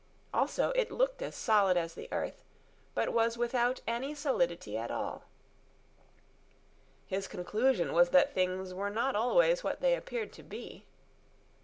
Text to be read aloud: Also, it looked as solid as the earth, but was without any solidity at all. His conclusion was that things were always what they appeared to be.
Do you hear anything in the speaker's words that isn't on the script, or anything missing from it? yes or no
yes